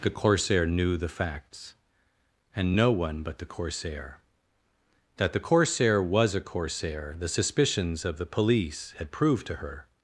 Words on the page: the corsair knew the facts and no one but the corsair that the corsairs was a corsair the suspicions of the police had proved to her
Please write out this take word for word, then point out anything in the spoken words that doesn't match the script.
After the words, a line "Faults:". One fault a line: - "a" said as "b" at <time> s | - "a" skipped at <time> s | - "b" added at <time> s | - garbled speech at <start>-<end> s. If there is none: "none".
the corsair knew the facts and no one but the corsair that the corsair was a corsair the suspicions of the police had proved to her
Faults:
- "corsairs" said as "corsair" at 5.4 s